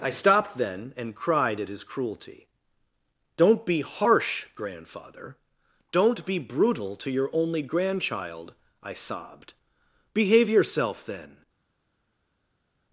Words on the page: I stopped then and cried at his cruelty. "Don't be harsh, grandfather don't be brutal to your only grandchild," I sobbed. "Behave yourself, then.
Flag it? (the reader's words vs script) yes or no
no